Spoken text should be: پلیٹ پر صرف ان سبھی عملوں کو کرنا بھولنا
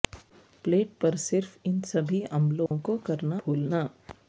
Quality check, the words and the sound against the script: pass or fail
fail